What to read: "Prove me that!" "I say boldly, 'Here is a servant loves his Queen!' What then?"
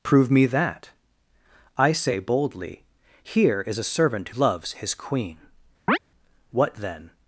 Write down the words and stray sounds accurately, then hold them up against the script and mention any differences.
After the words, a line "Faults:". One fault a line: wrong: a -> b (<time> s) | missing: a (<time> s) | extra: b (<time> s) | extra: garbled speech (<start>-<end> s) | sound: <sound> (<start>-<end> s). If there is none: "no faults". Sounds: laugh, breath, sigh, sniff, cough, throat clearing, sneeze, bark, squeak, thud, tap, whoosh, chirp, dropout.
"Prove me that!" "I say boldly, 'Here is a servant loves his Queen!' What then?"
Faults:
sound: chirp (5.9-6.0 s)